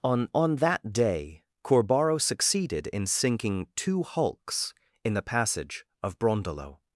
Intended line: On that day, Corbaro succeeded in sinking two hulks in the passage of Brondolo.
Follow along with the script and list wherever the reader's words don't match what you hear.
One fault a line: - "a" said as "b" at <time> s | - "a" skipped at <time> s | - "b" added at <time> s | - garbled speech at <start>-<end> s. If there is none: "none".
- "on" added at 0.3 s